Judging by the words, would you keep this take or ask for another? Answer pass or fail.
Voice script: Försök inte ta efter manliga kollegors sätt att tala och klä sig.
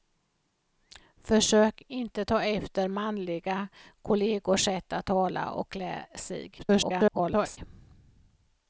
fail